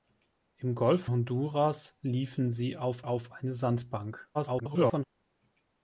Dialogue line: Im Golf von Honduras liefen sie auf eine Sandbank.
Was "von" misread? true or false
true